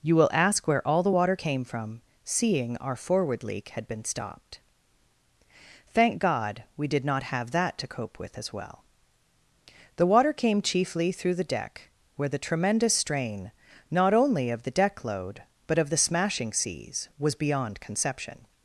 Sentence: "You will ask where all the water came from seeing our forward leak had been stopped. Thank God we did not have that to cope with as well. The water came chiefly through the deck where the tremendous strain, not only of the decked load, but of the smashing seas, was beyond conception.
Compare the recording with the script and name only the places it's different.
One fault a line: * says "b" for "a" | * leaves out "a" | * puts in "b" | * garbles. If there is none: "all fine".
* says "deck" for "decked"